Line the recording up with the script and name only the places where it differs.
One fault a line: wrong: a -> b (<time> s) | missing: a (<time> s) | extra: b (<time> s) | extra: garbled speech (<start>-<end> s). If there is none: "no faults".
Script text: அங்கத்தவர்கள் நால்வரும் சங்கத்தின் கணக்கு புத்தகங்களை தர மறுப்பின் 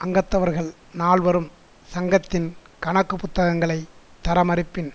no faults